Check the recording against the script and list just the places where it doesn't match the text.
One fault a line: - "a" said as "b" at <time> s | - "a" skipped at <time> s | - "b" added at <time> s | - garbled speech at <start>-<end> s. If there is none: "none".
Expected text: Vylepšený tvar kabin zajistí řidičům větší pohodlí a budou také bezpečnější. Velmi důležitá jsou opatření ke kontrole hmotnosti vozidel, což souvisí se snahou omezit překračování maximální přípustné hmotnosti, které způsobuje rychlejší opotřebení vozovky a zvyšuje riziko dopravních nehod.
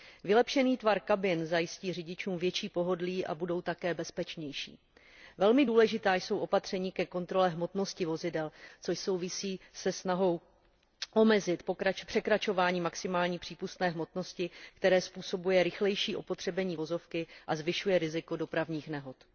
none